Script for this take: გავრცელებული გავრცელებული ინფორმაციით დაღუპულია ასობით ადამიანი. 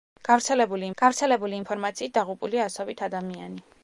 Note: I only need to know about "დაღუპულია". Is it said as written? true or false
true